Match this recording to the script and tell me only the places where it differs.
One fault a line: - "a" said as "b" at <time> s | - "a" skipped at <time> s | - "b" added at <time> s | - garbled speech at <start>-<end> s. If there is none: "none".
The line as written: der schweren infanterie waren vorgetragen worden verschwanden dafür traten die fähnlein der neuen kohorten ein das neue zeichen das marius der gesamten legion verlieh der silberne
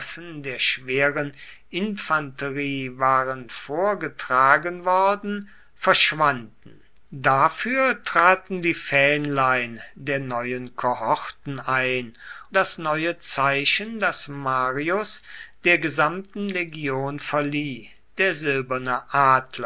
none